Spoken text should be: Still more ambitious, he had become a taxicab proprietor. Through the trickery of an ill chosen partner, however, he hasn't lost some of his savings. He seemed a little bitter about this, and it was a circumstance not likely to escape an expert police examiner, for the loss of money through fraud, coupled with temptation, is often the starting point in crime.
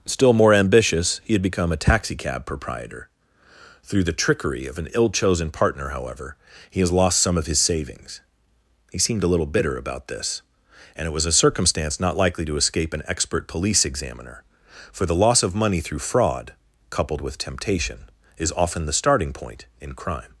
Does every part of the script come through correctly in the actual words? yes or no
no